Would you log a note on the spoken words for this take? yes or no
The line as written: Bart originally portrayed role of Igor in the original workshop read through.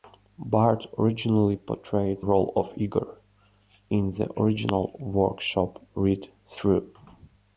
no